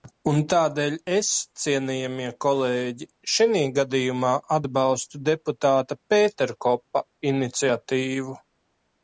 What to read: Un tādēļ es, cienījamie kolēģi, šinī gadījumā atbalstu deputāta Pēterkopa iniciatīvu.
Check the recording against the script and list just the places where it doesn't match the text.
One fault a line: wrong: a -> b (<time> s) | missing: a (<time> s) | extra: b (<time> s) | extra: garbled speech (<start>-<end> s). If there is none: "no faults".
no faults